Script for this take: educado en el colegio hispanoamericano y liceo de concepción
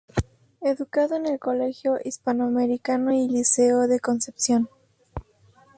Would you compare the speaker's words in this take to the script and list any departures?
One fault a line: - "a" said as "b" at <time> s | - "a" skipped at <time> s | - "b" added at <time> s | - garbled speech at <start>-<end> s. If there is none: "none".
none